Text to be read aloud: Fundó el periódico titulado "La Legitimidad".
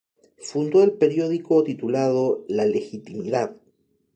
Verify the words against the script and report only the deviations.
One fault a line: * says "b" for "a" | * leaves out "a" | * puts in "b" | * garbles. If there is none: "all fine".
all fine